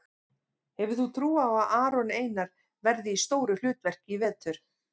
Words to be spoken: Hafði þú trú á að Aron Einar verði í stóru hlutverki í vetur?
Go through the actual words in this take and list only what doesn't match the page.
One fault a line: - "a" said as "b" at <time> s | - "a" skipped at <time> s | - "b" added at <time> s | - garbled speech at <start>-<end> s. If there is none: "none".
- "Hafði" said as "Hefur" at 0.8 s